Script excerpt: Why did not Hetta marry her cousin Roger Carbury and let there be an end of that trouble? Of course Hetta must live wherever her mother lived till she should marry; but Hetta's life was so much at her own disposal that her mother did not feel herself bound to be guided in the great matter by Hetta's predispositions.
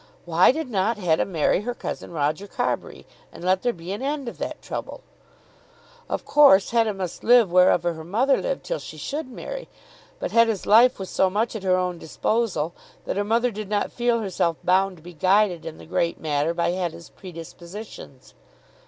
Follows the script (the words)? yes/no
yes